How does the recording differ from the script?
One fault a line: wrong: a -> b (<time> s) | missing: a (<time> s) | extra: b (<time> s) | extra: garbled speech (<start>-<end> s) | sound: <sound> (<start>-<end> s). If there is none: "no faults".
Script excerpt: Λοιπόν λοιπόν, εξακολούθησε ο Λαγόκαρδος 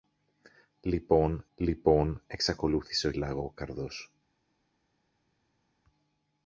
no faults